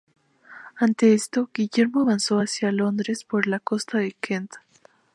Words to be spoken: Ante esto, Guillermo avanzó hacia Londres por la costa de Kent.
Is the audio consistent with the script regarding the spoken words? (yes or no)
yes